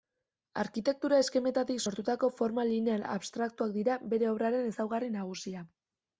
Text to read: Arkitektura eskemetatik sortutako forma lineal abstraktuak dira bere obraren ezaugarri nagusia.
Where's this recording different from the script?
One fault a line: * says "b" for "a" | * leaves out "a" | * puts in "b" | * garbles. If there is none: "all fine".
all fine